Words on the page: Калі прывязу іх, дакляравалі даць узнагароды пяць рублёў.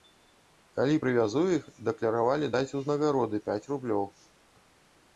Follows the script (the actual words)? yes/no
yes